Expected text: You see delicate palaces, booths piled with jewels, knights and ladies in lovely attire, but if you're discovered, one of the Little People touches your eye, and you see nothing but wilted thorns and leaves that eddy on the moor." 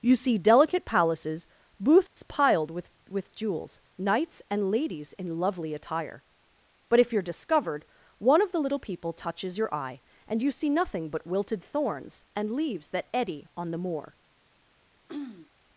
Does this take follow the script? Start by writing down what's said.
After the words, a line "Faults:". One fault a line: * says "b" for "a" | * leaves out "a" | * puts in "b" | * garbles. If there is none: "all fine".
You see delicate palaces, booths piled with with jewels, knights and ladies in lovely attire, but if you're discovered, one of the Little People touches your eye, and you see nothing but wilted thorns and leaves that eddy on the moor."
Faults:
* puts in "with"